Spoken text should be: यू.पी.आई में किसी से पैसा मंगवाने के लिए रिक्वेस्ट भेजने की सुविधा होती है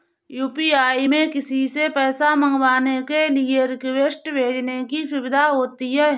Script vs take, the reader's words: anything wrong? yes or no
no